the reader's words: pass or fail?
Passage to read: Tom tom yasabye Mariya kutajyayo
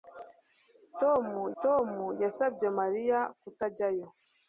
pass